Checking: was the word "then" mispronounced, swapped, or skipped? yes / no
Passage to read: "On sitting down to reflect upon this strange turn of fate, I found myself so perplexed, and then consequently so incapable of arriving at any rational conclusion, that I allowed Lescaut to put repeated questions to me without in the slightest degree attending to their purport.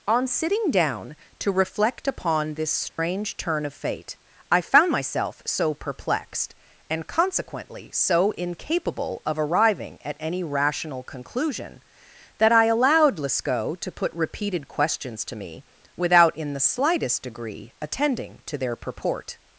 yes